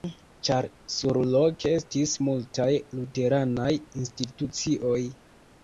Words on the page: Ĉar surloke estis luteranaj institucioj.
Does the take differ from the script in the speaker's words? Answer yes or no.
yes